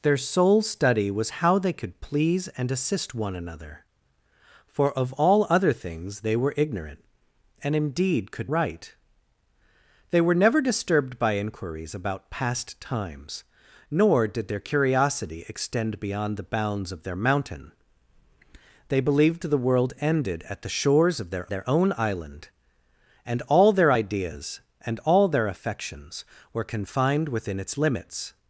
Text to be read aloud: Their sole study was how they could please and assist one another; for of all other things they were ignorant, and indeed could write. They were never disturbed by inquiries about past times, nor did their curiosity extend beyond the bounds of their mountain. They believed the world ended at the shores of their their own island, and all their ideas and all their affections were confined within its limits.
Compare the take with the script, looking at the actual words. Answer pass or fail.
pass